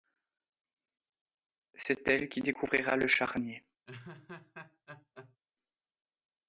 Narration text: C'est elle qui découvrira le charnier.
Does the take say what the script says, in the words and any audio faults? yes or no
no